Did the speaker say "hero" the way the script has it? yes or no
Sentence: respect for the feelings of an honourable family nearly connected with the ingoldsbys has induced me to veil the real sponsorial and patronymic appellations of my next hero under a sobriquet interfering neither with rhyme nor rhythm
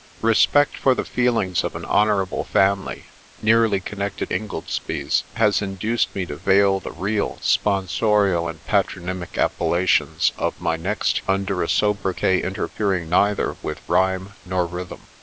no